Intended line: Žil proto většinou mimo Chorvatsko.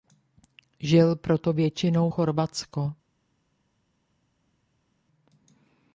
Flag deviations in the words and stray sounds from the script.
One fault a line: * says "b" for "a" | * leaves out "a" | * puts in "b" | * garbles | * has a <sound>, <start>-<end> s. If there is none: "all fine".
* leaves out "mimo"